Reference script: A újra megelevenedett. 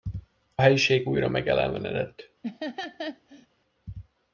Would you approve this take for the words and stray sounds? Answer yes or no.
no